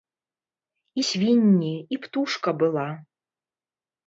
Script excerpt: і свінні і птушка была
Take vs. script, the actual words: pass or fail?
pass